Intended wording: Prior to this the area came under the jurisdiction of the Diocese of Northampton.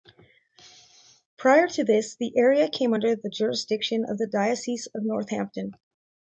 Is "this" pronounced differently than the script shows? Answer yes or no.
no